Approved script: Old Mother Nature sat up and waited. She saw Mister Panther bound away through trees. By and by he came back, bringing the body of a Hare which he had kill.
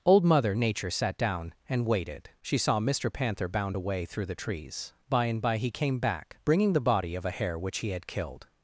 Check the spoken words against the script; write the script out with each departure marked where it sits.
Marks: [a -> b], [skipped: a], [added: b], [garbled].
Old Mother Nature sat [up -> down] and waited. She saw Mister Panther bound away through [added: the] trees. By and by he came back, bringing the body of a Hare which he had [kill. -> killed]